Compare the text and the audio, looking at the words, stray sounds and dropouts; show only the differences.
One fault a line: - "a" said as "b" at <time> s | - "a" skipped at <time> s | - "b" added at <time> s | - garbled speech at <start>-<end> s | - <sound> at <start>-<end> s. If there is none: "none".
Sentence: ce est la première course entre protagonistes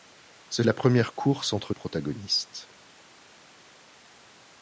none